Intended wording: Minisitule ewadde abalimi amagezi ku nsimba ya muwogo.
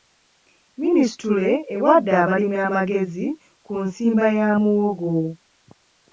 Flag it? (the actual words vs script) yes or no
no